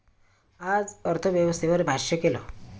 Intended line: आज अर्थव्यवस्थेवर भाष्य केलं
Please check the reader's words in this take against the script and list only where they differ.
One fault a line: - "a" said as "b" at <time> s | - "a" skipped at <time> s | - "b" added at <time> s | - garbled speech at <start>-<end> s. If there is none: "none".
none